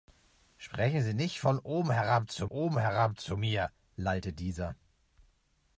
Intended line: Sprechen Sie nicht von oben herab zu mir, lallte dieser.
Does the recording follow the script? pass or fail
fail